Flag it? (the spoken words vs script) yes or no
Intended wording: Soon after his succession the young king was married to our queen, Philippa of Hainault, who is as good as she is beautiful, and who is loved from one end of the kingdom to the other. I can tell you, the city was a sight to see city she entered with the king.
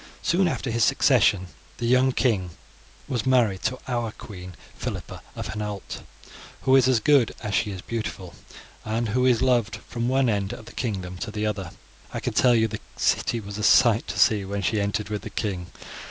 yes